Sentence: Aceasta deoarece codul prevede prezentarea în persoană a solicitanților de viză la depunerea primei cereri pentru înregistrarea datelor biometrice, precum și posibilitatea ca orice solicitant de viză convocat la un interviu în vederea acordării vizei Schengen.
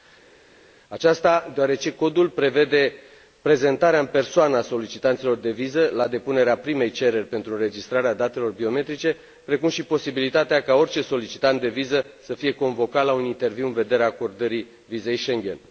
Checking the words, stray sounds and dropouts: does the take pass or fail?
fail